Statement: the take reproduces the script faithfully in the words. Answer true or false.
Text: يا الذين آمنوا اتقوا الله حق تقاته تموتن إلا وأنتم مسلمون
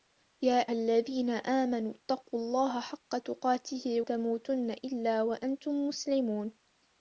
true